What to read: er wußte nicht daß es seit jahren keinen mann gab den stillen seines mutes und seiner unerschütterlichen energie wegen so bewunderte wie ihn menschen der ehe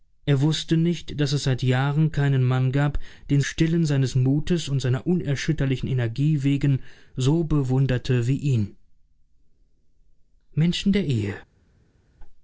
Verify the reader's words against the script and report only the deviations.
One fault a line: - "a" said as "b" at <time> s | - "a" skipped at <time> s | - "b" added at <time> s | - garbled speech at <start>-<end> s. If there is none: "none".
none